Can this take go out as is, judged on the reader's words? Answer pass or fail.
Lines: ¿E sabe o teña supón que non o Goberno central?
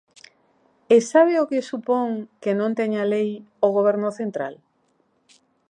fail